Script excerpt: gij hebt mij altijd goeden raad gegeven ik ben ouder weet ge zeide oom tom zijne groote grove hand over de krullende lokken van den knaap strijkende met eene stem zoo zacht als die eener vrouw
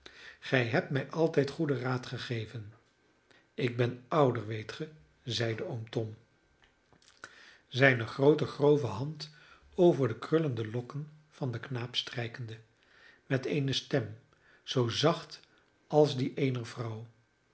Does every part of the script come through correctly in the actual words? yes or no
yes